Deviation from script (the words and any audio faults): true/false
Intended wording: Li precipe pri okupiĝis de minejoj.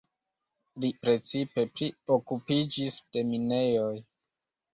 false